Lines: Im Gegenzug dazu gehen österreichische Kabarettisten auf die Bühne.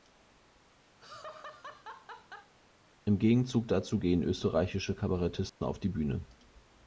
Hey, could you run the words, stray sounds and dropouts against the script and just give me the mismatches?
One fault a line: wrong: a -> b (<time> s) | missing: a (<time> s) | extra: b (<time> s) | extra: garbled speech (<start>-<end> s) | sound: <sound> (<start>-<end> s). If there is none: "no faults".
sound: laugh (1.0-2.5 s)
sound: dropout (5.5-5.6 s)